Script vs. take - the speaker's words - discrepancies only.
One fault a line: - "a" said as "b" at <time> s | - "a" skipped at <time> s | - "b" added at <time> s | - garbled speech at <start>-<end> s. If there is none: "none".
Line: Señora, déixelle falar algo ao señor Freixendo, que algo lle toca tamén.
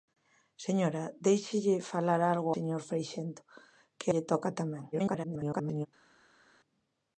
- "ao" skipped at 2.5 s
- "algo" skipped at 4.1 s
- garbled speech at 4.9-5.9 s